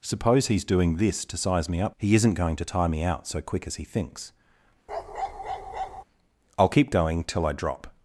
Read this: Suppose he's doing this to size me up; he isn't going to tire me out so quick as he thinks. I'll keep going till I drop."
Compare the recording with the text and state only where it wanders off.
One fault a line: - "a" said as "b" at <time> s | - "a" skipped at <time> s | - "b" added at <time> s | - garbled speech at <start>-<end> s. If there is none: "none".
none